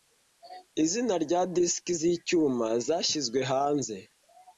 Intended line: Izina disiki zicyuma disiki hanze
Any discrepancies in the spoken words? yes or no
yes